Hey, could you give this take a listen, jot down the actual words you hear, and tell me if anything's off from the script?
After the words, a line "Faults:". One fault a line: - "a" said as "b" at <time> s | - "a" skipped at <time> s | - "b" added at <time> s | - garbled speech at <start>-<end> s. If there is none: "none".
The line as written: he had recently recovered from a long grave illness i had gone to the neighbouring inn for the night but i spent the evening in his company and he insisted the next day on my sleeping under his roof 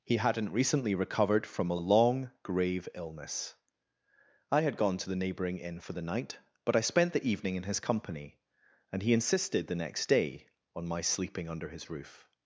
he hadn't recently recovered from a long grave illness i had gone to the neighbouring inn for the night but i spent the evening in his company and he insisted the next day on my sleeping under his roof
Faults:
- "had" said as "hadn't" at 0.2 s